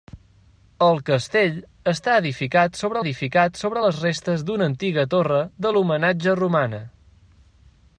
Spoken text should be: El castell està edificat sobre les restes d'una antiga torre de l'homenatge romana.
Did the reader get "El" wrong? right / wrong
right